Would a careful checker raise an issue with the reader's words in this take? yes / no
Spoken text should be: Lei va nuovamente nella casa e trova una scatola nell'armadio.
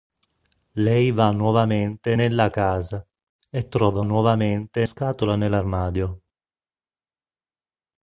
yes